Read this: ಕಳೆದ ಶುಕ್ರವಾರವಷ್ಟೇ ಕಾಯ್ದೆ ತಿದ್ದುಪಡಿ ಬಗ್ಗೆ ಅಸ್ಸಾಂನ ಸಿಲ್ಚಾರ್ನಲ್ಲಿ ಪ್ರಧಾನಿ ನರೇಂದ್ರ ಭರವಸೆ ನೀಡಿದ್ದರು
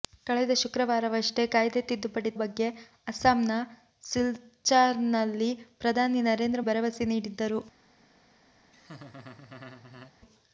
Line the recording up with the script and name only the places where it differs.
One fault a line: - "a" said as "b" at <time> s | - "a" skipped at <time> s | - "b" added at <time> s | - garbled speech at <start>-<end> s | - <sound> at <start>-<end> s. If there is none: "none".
- laugh at 8.7-10.1 s